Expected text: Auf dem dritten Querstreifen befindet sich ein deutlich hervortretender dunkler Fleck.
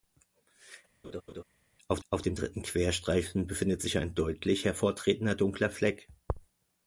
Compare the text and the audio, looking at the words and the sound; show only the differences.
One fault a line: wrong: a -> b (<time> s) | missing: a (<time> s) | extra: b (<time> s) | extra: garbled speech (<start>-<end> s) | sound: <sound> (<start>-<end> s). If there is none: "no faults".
sound: laugh (1.0-1.4 s)
extra: auf (2.1 s)